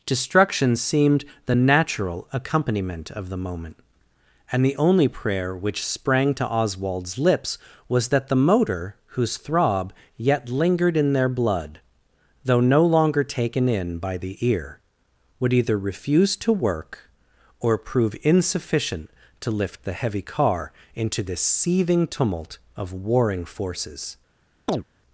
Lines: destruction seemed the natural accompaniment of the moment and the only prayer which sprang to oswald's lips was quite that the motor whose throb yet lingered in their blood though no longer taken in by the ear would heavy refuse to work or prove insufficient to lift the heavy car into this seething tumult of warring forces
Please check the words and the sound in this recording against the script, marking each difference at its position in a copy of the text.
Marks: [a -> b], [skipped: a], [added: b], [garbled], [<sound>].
destruction seemed the natural accompaniment of the moment and the only prayer which sprang to oswald's lips was [skipped: quite] that the motor whose throb yet lingered in their blood though no longer taken in by the ear would [heavy -> either] refuse to work or prove insufficient to lift the heavy car into this seething tumult of warring forces [chirp]